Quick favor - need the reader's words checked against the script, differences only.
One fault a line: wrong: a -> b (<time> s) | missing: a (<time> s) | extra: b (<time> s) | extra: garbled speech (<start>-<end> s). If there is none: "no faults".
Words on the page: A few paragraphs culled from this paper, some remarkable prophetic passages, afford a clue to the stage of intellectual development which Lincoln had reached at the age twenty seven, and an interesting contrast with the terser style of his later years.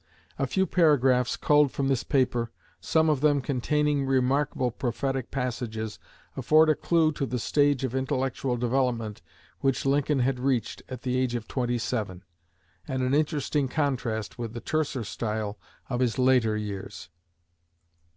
extra: of them containing (3.1 s)
extra: of (11.3 s)